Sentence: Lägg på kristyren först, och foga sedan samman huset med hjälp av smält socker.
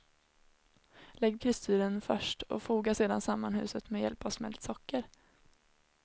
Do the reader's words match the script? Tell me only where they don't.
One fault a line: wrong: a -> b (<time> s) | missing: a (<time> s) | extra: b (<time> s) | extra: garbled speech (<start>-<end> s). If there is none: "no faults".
missing: på (1.4 s)